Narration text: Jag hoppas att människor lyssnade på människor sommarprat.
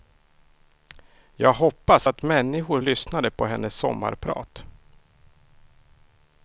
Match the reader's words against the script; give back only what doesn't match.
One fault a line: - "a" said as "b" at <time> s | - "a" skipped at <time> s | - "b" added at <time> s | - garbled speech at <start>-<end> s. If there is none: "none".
- "människor" said as "hennes" at 3.5 s